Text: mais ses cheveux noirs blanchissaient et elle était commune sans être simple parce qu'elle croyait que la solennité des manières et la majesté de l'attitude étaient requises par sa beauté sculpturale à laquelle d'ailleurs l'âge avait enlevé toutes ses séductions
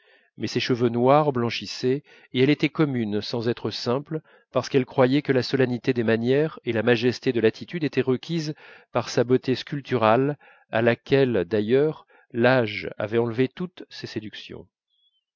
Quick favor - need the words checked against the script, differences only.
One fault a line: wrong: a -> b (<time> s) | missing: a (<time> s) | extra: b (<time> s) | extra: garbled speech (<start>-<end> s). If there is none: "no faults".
no faults